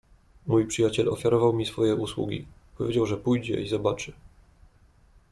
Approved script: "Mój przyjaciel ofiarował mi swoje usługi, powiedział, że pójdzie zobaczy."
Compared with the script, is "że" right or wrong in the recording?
right